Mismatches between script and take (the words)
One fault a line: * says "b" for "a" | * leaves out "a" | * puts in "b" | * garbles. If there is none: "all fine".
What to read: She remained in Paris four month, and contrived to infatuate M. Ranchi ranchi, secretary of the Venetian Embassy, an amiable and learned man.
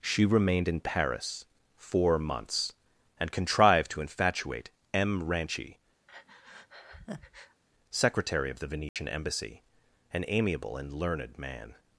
* says "months" for "month"
* leaves out "ranchi"